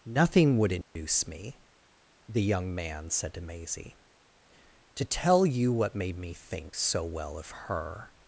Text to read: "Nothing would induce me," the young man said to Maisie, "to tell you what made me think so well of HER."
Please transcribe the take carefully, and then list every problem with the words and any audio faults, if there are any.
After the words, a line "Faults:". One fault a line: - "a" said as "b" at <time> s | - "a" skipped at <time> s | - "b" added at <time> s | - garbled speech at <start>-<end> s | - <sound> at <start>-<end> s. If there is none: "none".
"Nothing would induce me," the young man said to Maisie, "to tell you what made me think so well of HER."
Faults:
- dropout at 0.8-1.0 s